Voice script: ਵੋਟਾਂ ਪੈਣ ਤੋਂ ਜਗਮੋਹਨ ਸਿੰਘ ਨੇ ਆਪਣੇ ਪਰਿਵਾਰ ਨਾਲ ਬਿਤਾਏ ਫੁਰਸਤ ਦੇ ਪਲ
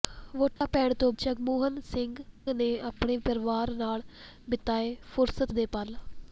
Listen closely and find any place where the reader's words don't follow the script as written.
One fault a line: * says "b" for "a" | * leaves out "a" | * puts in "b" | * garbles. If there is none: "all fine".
all fine